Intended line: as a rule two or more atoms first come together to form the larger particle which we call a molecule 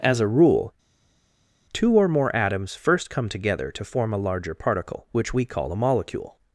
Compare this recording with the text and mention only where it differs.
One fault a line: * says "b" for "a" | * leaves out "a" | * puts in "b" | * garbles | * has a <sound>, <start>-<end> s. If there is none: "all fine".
* says "a" for "the"